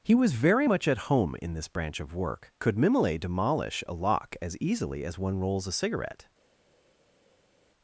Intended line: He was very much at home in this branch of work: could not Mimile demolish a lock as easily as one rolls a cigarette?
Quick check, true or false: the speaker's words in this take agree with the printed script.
false